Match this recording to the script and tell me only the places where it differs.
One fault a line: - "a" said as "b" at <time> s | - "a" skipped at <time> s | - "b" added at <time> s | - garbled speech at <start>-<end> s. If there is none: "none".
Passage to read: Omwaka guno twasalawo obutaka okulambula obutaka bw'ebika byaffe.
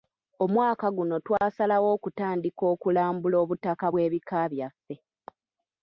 - "obutaka" said as "okutandika" at 1.9 s